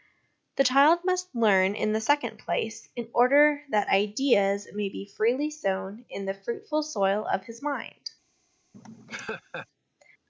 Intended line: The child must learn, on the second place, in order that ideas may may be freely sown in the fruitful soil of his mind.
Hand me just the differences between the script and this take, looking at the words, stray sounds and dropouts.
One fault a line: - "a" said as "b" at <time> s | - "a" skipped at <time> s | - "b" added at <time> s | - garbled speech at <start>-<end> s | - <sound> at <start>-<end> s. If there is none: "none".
- "on" said as "in" at 1.7 s
- "may" skipped at 4.9 s
- laugh at 8.7-9.7 s